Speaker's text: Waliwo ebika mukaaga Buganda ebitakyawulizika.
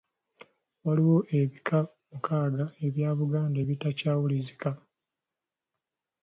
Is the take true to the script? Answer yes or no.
no